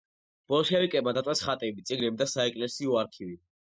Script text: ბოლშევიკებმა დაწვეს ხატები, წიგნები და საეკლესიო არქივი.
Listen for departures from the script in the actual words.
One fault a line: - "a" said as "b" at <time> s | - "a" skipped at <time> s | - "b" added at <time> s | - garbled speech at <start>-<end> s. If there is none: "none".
none